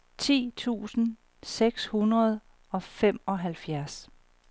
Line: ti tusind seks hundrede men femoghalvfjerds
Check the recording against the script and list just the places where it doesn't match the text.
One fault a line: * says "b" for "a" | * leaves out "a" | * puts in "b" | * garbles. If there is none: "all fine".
* says "og" for "men"